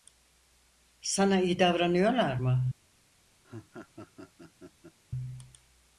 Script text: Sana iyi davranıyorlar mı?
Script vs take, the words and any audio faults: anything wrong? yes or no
yes